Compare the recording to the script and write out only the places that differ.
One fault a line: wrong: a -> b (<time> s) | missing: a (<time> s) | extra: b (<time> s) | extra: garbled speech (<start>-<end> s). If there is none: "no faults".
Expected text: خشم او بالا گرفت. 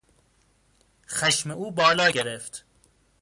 no faults